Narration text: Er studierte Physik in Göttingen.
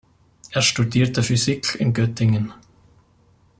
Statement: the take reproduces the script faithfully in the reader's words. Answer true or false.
true